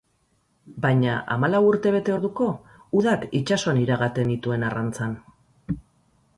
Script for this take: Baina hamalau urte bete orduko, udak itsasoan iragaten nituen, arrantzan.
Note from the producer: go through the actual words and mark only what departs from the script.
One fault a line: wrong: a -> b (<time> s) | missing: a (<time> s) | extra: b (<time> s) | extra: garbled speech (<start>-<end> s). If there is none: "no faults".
no faults